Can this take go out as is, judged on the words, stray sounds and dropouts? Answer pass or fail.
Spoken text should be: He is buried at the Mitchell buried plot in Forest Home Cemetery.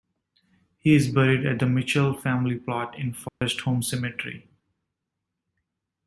fail